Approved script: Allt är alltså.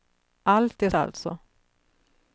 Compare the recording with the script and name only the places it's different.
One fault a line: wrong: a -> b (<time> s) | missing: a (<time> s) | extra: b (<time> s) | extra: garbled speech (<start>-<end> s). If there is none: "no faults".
no faults